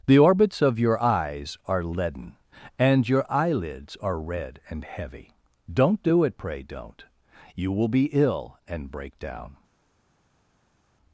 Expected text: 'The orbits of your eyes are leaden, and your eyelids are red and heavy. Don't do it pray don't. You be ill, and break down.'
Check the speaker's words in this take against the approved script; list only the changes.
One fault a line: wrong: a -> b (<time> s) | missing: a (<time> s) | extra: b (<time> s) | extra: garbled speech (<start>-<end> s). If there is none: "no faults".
extra: will (7.7 s)